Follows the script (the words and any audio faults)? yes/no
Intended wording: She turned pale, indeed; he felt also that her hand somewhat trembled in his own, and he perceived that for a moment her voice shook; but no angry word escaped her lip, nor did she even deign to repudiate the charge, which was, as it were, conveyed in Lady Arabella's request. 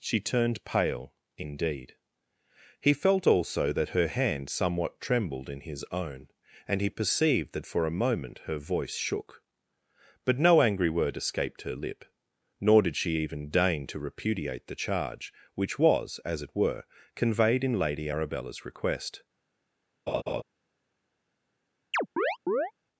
no